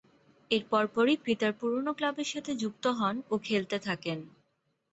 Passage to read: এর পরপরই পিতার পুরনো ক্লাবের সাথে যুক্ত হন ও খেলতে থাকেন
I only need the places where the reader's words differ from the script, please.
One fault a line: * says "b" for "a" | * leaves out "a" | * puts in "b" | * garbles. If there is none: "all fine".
all fine